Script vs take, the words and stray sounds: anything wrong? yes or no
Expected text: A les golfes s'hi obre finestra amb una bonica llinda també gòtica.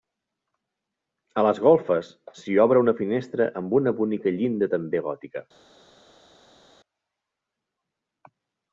yes